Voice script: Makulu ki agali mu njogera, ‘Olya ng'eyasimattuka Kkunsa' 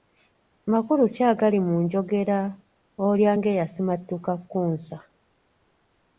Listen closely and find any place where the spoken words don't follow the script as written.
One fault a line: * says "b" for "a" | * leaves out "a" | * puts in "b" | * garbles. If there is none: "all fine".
all fine